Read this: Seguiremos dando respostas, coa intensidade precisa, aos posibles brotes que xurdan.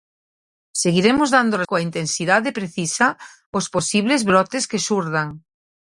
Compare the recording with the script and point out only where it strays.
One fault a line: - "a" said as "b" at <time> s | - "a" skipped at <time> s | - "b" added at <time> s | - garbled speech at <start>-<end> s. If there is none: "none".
- "respostas" skipped at 1.6 s